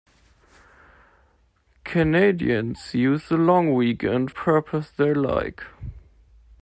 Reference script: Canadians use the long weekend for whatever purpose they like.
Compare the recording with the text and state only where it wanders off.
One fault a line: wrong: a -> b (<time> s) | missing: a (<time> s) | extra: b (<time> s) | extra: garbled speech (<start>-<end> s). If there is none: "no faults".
missing: for whatever (4.3 s)